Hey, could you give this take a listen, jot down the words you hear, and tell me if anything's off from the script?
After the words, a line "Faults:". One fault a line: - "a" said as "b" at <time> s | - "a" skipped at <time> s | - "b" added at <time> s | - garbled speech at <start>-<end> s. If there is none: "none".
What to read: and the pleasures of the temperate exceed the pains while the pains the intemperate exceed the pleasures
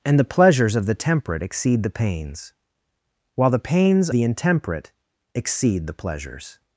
and the pleasures of the temperate exceed the pains while the pains the intemperate exceed the pleasures
Faults:
none